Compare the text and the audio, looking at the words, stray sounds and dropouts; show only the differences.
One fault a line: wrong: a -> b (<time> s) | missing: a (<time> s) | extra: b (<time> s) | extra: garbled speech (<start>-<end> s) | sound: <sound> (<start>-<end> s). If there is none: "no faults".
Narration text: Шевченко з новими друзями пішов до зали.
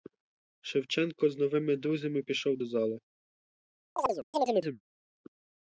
sound: chirp (4.0-4.8 s)